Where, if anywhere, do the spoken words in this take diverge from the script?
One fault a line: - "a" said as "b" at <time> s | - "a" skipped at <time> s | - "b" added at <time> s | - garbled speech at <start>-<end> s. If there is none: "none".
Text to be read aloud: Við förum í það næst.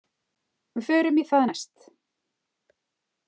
none